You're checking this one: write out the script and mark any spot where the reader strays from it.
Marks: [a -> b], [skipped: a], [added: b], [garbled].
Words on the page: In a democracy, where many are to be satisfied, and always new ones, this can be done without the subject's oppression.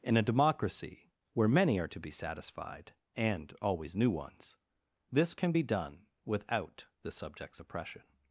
In a democracy, where many are to be satisfied, and always new ones, this can be done without the subject's oppression.